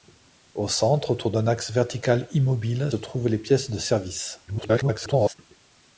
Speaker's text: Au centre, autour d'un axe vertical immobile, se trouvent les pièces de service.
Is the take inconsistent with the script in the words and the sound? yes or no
yes